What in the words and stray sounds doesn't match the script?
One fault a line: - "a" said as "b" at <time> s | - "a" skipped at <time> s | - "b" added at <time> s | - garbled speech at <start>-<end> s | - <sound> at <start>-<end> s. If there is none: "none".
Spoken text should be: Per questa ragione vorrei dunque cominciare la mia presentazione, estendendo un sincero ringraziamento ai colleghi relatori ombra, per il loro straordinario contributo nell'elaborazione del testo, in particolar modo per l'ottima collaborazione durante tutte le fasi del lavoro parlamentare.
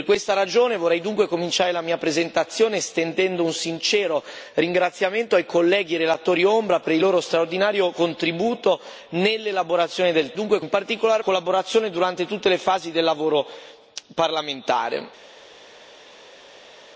- "testo" said as "dunque" at 10.3 s
- "modo per l'ottima" skipped at 11.2 s